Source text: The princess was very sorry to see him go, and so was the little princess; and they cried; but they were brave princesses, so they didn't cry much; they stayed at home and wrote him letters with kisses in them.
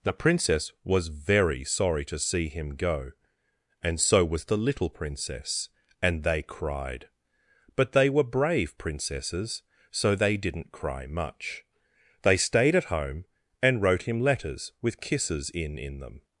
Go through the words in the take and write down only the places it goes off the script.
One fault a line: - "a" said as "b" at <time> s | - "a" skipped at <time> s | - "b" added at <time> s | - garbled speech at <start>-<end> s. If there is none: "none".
- "in" added at 15.8 s